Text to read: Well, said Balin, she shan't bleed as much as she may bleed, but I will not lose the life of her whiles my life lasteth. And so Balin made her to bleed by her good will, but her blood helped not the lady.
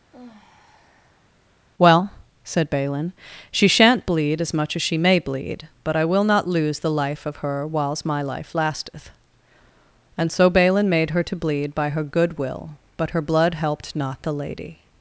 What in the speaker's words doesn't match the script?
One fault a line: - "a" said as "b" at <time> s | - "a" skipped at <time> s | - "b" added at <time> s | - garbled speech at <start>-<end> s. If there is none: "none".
none